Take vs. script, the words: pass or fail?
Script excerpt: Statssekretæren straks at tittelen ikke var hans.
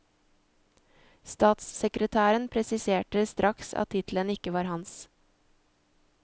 fail